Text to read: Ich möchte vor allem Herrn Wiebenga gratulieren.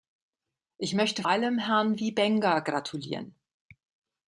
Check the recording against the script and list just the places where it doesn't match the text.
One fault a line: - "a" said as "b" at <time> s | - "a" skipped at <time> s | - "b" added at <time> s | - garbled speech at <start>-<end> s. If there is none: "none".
- "vor" skipped at 1.2 s